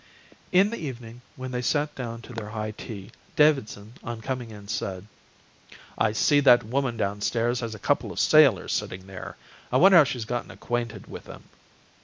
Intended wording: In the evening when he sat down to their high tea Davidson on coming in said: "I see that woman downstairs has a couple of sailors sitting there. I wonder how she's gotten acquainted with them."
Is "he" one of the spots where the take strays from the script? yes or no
yes